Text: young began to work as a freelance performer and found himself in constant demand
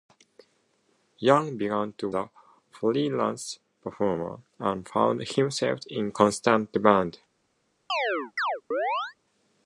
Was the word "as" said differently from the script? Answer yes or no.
yes